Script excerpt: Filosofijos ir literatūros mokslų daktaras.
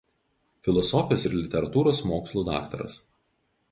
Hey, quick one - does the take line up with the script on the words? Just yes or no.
yes